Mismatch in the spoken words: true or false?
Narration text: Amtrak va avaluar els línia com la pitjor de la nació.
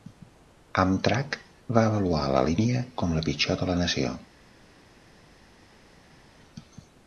true